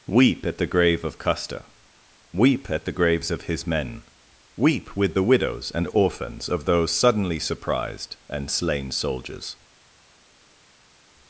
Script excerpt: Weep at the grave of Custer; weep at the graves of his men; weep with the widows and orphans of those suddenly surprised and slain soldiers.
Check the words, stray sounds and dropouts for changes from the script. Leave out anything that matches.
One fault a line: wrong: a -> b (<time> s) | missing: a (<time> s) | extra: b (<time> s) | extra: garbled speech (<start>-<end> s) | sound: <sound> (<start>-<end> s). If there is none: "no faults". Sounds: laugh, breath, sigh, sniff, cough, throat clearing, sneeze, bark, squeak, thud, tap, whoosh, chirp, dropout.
no faults